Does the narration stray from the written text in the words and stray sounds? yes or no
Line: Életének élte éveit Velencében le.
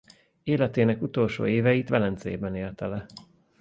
yes